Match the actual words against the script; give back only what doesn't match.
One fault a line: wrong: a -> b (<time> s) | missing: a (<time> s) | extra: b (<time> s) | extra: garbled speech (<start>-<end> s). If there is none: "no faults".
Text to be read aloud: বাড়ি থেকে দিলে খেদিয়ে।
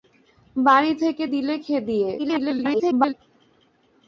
extra: garbled speech (2.2-3.1 s)